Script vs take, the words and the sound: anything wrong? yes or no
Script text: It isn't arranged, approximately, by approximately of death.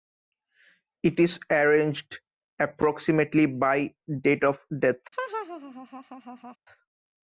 yes